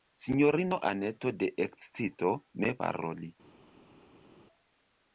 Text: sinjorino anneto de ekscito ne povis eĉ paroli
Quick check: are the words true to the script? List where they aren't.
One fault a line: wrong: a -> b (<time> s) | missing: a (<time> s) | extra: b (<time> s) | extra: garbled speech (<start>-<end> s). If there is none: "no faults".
missing: povis eĉ (2.7 s)